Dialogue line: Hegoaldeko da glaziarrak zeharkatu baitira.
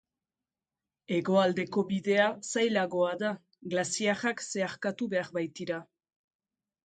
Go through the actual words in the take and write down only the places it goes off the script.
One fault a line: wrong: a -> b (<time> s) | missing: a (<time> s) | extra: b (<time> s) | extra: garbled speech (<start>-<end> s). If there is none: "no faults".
extra: bidea zailagoa (1.9 s)
extra: behar (5.2 s)